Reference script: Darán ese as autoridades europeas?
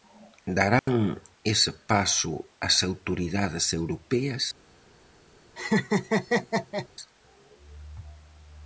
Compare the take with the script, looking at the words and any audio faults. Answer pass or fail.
fail